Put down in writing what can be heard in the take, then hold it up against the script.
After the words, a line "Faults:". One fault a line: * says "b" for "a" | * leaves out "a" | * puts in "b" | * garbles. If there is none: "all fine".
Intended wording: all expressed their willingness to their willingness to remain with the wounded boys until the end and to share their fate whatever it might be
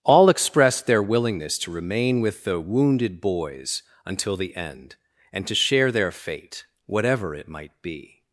all expressed their willingness to remain with the wounded boys until the end and to share their fate whatever it might be
Faults:
* leaves out "their willingness to"